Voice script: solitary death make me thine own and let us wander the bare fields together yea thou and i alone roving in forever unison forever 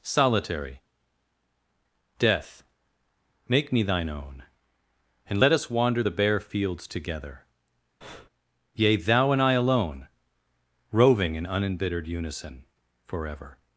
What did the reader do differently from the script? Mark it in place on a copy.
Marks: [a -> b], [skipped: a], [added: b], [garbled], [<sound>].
solitary death make me thine own and let us wander the bare fields together [breath] yea thou and i alone roving in [forever -> unembittered] unison forever